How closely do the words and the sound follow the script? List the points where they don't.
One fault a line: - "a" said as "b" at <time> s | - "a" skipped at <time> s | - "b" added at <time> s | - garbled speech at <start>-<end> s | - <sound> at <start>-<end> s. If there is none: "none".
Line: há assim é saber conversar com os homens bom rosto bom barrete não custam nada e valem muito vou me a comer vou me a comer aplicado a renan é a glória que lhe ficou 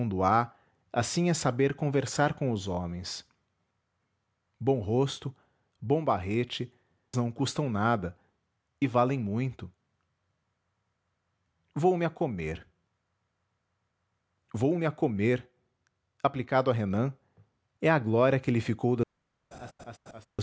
- laugh at 19.5-20.3 s